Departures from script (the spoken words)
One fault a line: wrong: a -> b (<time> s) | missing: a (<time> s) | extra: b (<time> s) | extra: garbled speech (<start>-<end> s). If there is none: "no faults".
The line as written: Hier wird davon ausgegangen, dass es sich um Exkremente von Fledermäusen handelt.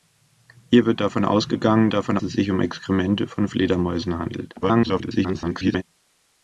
wrong: dass -> davon (1.9 s)
extra: garbled speech (4.6-5.8 s)